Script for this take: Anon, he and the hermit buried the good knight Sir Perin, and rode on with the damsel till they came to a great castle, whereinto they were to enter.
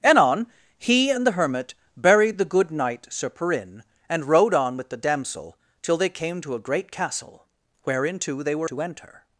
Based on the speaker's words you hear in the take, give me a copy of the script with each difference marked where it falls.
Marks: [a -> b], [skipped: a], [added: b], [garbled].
Anon, he and the hermit buried the good knight Sir Perin, and rode on with the damsel till they came to a great castle, whereinto they were to enter.